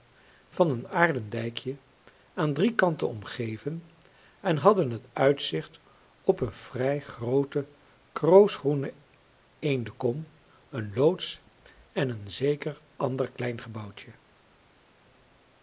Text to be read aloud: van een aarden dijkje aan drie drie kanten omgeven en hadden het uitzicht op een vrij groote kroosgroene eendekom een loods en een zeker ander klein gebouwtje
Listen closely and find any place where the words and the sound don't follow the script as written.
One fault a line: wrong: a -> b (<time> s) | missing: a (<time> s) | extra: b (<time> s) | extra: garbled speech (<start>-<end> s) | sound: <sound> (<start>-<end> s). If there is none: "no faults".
missing: drie (2.8 s)